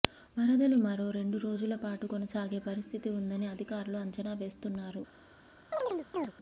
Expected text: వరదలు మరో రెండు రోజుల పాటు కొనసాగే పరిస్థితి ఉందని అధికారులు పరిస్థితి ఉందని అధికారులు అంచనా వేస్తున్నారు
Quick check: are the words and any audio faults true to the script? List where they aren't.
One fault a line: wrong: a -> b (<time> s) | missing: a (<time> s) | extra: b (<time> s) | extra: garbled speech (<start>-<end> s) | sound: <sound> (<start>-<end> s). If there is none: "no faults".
missing: పరిస్థితి ఉందని అధికారులు (4.0 s)
sound: chirp (5.7-6.3 s)